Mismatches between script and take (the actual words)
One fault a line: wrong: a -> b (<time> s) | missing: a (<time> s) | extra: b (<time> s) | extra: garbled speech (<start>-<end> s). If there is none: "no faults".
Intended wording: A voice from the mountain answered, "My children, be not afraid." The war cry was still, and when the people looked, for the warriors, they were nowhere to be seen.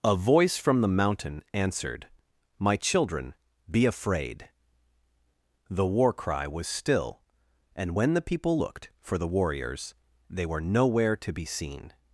missing: not (3.9 s)